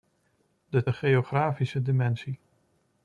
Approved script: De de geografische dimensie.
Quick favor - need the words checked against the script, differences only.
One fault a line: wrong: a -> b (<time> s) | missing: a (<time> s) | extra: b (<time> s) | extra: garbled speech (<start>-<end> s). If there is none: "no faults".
no faults